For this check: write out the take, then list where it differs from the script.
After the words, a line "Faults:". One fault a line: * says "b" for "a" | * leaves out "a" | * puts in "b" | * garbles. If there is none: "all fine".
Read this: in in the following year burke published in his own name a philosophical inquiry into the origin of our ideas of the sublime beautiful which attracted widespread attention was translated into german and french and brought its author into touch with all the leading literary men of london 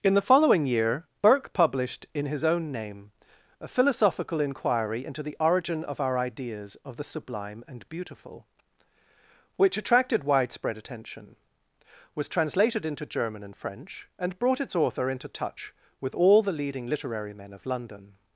in the following year burke published in his own name a philosophical inquiry into the origin of our ideas of the sublime and beautiful which attracted widespread attention was translated into german and french and brought its author into touch with all the leading literary men of london
Faults:
* leaves out "in"
* puts in "and"